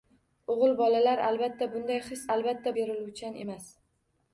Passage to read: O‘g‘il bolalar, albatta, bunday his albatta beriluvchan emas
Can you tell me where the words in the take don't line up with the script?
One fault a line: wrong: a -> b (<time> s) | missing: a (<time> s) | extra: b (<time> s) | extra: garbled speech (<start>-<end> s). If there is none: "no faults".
no faults